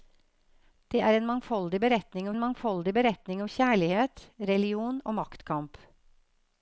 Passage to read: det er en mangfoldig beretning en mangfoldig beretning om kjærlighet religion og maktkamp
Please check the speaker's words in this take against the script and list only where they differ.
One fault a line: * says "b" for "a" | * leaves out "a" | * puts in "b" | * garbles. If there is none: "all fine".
all fine